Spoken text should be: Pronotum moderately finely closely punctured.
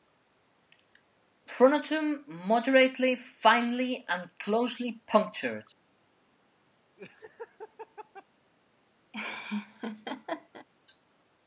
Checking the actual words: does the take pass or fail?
fail